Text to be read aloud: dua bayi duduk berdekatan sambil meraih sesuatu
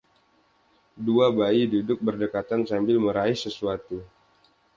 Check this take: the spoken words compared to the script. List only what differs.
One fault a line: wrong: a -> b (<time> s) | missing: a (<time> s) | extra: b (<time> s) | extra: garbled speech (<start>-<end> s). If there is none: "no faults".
no faults